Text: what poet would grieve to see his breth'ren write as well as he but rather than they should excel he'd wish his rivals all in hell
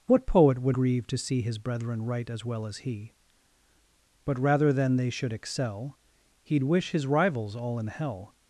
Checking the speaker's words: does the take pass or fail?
pass